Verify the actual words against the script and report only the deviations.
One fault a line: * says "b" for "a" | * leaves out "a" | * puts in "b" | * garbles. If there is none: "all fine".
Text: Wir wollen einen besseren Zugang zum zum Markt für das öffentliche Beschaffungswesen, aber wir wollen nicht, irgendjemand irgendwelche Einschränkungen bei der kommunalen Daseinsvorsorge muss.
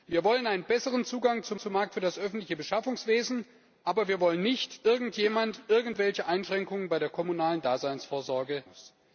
all fine